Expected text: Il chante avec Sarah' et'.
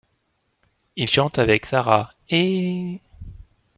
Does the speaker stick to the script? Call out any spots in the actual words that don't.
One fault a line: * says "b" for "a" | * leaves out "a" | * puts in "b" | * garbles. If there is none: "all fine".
all fine